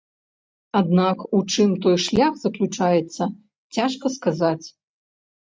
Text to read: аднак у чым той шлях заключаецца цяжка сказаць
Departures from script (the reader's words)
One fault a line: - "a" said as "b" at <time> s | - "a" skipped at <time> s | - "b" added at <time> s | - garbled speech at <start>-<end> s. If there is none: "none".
none